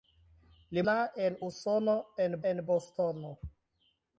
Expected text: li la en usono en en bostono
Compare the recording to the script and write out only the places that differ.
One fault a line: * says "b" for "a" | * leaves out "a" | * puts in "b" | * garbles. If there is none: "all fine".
all fine